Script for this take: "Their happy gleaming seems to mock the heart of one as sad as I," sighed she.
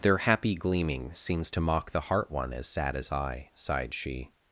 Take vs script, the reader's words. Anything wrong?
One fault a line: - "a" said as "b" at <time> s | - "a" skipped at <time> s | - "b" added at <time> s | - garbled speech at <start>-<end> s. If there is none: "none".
- "of" skipped at 2.3 s